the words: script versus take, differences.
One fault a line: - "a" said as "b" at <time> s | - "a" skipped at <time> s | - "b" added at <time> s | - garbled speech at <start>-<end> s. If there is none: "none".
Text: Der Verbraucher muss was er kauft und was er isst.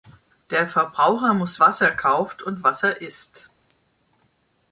none